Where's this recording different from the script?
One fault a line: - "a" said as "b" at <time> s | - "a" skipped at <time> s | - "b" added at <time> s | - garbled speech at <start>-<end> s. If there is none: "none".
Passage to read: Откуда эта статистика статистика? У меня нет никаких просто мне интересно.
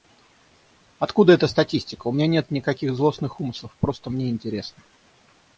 - "статистика" skipped at 2.1 s
- "злостных умыслов" added at 3.0 s